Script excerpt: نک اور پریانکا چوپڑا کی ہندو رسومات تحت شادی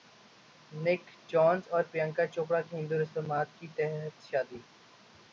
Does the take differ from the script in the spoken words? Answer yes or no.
yes